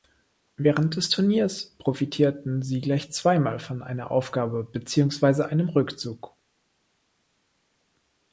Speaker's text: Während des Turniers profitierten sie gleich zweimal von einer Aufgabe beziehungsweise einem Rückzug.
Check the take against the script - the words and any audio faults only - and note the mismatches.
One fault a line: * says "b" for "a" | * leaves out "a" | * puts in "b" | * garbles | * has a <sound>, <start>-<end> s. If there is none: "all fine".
all fine